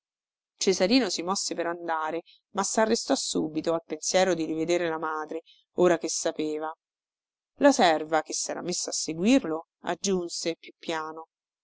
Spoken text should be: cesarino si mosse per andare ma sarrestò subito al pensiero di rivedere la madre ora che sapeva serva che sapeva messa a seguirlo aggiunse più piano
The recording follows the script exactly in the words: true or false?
false